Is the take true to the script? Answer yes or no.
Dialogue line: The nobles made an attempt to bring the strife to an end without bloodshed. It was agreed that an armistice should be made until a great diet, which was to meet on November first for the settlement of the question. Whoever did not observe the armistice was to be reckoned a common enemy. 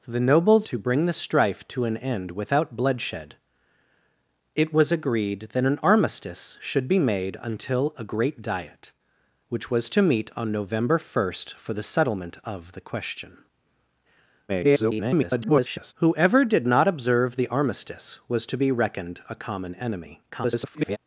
no